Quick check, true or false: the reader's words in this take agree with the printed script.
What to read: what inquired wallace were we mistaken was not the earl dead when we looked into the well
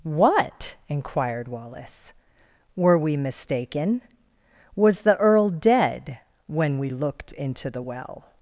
false